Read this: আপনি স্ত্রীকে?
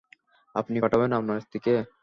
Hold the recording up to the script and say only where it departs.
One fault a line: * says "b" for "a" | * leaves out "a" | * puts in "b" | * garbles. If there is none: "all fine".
* puts in "পাঠাবেন আপনার"